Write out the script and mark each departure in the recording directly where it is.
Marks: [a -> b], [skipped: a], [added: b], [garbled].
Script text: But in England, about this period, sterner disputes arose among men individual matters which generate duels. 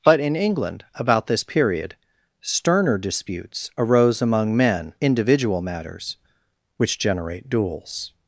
But in England, about this period, sterner disputes arose among men individual matters which generate duels.